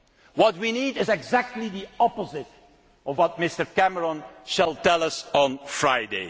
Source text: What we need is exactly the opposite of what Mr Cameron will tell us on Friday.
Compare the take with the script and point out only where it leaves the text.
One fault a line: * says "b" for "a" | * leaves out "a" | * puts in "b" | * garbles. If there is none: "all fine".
all fine